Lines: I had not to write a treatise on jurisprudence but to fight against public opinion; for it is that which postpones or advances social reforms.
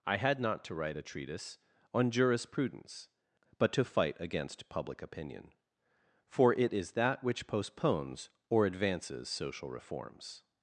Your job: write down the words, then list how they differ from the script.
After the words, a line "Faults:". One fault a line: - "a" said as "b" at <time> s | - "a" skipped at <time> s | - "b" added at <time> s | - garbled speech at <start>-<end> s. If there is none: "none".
I had not to write a treatise on jurisprudence but to fight against public opinion; for it is that which postpones or advances social reforms.
Faults:
none